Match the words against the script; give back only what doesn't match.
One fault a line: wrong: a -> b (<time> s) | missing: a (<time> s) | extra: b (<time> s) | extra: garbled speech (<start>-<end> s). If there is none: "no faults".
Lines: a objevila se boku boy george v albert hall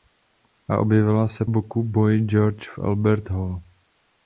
no faults